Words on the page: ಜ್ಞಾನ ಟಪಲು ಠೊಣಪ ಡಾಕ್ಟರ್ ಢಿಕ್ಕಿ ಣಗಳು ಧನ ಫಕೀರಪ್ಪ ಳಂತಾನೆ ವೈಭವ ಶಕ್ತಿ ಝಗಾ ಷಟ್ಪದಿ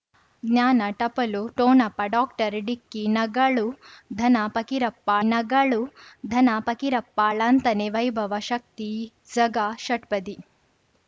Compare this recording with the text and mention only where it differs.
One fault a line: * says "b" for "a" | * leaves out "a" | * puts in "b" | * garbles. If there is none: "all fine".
* puts in "ಣಗಳು ಧನ ಫಕೀರಪ್ಪ"